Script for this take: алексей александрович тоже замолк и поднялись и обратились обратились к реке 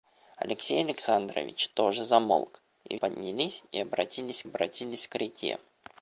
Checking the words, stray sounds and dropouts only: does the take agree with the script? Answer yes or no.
yes